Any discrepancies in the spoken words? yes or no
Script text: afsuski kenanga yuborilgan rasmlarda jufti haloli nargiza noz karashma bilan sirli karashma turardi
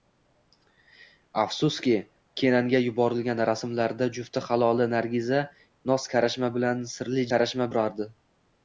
no